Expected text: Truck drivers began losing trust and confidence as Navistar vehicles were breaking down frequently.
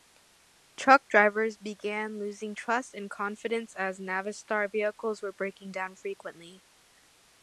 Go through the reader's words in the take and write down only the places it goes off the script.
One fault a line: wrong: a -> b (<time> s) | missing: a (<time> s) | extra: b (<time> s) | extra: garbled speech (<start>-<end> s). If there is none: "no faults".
no faults